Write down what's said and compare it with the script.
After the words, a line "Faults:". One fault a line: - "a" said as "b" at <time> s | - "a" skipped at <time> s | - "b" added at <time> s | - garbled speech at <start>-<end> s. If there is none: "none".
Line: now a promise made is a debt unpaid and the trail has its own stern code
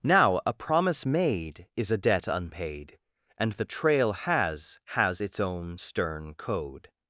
now a promise made is a debt unpaid and the trail has has its own stern code
Faults:
- "has" added at 5.0 s